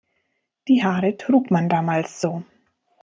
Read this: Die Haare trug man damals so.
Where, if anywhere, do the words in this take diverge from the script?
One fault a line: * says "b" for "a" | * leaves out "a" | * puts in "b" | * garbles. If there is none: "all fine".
all fine